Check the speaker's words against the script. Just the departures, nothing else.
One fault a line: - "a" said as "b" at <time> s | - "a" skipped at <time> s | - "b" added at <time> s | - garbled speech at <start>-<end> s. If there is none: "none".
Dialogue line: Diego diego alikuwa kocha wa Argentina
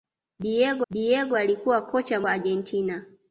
none